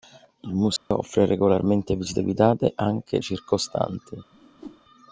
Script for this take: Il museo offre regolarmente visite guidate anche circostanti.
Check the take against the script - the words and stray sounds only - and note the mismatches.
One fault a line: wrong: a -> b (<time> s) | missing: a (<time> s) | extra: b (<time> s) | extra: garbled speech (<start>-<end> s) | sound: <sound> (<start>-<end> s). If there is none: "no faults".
sound: dropout (0.8-0.9 s)
sound: whoosh (4.3-4.8 s)